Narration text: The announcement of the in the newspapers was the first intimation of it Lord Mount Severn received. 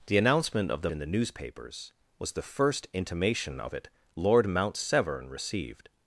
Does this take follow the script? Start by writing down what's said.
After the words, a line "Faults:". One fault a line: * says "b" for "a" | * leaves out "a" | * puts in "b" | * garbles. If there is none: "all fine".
The announcement of the in the newspapers was the first intimation of it Lord Mount Severn received.
Faults:
all fine